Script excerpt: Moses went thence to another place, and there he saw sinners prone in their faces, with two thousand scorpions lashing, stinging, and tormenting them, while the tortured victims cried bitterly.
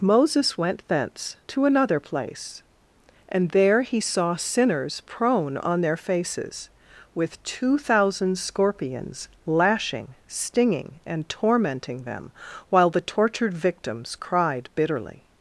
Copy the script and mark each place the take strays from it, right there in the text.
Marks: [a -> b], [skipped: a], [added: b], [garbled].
Moses went thence to another place, and there he saw sinners prone [in -> on] their faces, with two thousand scorpions lashing, stinging, and tormenting them, while the tortured victims cried bitterly.